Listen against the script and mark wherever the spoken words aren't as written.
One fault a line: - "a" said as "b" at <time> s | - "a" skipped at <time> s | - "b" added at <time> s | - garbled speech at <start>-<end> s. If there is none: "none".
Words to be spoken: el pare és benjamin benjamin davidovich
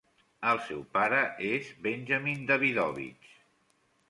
- "seu" added at 0.7 s
- "benjamin" skipped at 2.5 s